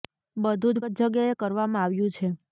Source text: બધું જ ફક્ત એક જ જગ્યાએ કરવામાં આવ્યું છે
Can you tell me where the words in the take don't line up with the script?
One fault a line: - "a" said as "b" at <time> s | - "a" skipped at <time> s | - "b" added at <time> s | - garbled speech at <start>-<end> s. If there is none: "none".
- "ફક્ત એક" skipped at 0.8 s